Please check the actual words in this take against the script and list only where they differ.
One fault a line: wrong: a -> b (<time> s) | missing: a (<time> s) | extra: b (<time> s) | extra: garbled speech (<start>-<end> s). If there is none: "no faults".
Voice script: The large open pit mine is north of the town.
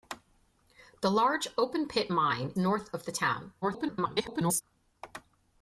missing: is (2.5 s)
extra: garbled speech (3.6-4.6 s)